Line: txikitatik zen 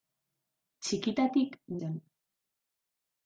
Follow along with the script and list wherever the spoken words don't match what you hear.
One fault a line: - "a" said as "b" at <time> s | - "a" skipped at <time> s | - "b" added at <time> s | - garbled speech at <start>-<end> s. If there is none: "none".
none